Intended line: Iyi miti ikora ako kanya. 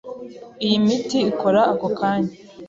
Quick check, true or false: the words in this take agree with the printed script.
true